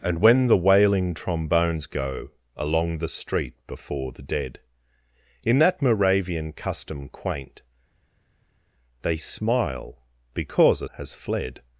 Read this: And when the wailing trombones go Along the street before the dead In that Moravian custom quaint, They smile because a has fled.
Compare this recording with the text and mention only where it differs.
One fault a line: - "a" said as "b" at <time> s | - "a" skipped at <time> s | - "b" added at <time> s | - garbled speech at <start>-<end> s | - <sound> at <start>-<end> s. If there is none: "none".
none